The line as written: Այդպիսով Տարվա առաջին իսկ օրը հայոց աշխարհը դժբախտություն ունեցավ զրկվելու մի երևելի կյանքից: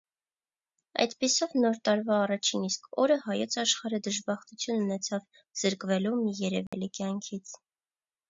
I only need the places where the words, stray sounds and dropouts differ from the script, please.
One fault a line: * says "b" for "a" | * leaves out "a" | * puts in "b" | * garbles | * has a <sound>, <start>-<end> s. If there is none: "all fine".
* puts in "Նոր"
* has a dropout, 6.7-6.7 s